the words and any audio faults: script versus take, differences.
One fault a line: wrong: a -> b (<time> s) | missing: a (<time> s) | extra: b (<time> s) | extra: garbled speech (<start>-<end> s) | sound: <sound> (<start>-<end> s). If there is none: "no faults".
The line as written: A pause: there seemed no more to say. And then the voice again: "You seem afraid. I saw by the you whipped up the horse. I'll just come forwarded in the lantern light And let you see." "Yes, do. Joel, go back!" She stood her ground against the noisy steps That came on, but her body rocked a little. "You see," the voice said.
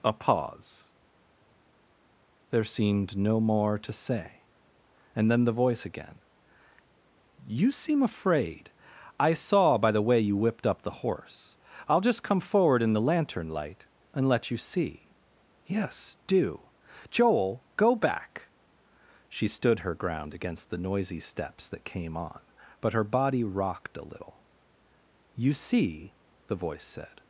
extra: way (10.1 s)
wrong: forwarded -> forward (12.4 s)